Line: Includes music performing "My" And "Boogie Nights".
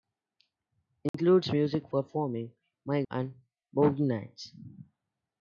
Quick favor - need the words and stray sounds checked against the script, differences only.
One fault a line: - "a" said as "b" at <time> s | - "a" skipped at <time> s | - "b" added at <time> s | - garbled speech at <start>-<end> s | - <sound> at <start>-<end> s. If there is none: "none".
- dropout at 1.1-1.1 s